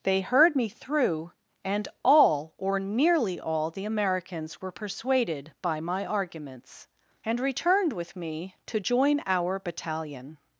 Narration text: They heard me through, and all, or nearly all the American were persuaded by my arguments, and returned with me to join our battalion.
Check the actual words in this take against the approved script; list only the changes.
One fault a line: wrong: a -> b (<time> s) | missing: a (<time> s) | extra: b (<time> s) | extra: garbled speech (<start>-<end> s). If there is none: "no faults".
wrong: American -> Americans (3.8 s)